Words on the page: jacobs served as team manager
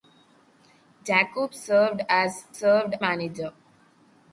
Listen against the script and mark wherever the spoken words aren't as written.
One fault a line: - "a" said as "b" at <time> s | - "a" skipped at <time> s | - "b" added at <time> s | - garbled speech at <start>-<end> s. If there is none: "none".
- "team" said as "served" at 2.5 s